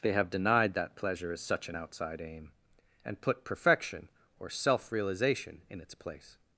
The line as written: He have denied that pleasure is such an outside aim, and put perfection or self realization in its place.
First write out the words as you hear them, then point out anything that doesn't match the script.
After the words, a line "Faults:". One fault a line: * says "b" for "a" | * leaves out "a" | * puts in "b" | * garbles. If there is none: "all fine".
They have denied that pleasure is such an outside aim, and put perfection or self realization in its place.
Faults:
* says "They" for "He"